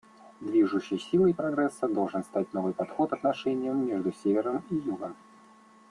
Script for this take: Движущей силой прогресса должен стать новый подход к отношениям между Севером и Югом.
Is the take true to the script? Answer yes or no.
no